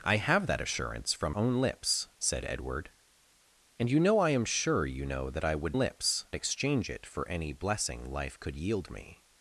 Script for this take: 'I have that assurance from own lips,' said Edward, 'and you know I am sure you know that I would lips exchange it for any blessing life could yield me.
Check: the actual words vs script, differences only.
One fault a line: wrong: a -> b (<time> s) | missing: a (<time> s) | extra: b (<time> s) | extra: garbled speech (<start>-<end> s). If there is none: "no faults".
no faults